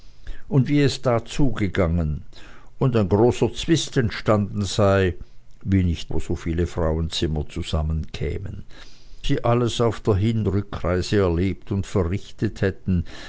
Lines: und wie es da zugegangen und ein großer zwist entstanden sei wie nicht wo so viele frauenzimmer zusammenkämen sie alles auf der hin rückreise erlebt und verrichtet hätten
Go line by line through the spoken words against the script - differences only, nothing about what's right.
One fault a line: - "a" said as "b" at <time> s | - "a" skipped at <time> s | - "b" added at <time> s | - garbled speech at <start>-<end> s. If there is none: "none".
none